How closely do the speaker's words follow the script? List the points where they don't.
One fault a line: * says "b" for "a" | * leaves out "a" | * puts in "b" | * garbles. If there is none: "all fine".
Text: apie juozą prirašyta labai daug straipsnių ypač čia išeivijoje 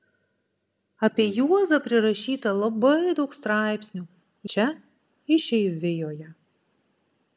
* leaves out "ypač"